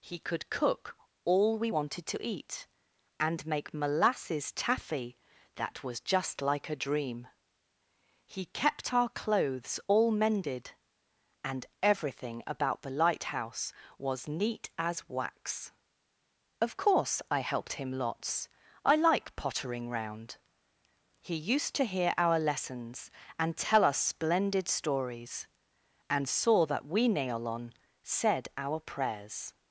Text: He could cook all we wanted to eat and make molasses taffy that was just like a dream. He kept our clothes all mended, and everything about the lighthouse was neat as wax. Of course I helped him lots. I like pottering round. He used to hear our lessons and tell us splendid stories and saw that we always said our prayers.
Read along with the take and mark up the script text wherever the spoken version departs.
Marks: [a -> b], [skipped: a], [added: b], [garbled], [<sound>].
He could cook all we wanted to eat and make molasses taffy that was just like a dream. He kept our clothes all mended, and everything about the lighthouse was neat as wax. Of course I helped him lots. I like pottering round. He used to hear our lessons and tell us splendid stories and saw that we [always -> neolon] said our prayers.